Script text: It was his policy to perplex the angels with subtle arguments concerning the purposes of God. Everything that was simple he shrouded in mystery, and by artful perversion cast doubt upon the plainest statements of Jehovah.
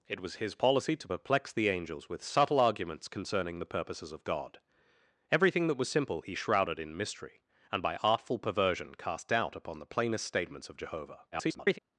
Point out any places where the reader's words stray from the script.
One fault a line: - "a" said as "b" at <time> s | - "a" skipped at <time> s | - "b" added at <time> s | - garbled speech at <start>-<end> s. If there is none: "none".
- garbled speech at 11.3-11.8 s